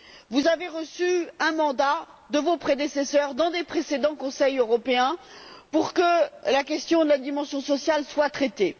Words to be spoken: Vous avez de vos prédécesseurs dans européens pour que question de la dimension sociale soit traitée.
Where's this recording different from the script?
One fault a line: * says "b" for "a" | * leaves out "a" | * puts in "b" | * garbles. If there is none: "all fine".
* puts in "reçu un mandat"
* puts in "des précédents Conseils"
* puts in "la"